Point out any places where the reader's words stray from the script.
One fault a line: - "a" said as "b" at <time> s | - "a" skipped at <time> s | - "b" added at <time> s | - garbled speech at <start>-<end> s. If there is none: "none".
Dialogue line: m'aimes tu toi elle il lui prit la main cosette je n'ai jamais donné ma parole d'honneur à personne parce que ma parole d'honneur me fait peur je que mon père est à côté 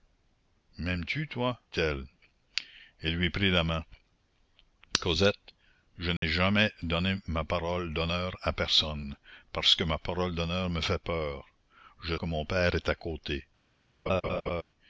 none